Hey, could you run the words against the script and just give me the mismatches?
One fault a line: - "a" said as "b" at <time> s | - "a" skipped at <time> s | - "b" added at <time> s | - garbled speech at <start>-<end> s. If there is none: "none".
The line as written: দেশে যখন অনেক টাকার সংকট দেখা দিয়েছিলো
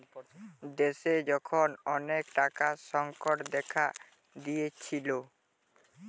none